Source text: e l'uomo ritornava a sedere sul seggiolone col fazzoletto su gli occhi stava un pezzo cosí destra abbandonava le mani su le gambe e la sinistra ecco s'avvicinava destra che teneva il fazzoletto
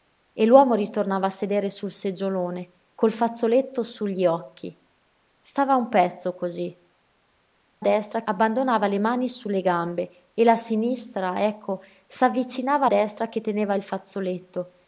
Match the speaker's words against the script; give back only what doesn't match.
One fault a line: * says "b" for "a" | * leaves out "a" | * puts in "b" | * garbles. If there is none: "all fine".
all fine